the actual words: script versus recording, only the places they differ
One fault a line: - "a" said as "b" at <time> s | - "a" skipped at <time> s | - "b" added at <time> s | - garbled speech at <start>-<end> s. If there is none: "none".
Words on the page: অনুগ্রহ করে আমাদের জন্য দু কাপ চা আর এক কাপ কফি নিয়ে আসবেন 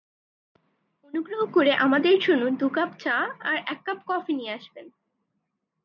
none